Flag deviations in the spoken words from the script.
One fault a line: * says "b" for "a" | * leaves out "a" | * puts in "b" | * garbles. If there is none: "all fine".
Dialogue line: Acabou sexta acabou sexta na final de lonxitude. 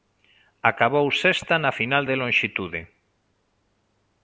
* leaves out "acabou sexta"